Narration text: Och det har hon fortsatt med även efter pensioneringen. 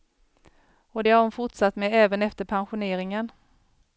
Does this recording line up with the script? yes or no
yes